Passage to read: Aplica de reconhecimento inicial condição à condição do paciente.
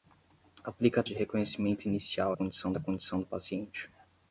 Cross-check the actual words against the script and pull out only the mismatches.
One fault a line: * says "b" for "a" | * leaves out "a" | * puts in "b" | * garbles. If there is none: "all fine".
all fine